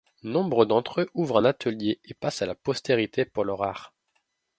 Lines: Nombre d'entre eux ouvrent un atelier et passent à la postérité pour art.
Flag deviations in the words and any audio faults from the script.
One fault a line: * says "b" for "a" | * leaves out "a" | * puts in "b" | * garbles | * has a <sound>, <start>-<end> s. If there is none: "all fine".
* puts in "leur"